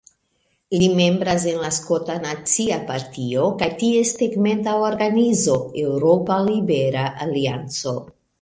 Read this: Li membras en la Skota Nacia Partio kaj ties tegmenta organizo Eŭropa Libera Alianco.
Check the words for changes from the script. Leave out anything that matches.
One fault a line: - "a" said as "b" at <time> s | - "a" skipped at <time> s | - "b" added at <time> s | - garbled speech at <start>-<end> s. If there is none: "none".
none